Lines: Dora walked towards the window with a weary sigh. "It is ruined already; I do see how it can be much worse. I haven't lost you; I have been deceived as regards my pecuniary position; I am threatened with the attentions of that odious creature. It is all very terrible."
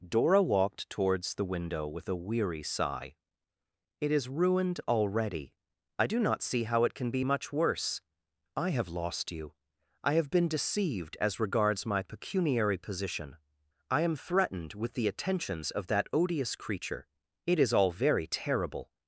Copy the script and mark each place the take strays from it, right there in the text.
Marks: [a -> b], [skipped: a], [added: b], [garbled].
Dora walked towards the window with a weary sigh. "It is ruined already; I do [added: not] see how it can be much worse. I [haven't -> have] lost you; I have been deceived as regards my pecuniary position; I am threatened with the attentions of that odious creature. It is all very terrible."